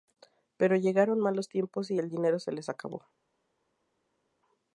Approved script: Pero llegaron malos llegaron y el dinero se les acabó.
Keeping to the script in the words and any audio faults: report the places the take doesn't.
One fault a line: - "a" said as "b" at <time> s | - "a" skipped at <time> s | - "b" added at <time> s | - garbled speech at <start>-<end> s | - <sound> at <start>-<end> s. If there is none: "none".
- "llegaron" said as "tiempos" at 1.5 s